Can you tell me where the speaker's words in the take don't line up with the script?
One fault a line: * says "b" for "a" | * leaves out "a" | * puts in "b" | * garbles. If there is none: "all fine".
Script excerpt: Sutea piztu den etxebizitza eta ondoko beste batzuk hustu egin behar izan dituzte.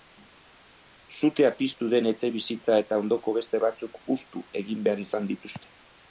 all fine